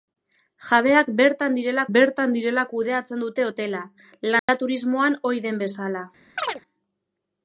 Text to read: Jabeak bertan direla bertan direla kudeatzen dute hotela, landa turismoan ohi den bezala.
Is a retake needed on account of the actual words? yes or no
no